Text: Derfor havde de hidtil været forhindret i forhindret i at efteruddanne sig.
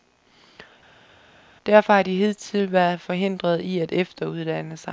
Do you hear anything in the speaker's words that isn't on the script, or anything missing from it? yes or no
yes